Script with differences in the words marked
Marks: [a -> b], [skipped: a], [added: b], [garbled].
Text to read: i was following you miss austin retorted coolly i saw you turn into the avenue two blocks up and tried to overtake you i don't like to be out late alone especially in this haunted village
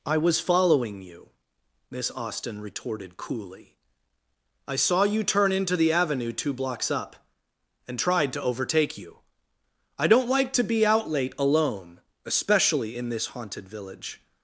i was following you miss austin retorted coolly i saw you turn into the avenue two blocks up and tried to overtake you i don't like to be out late alone especially in this haunted village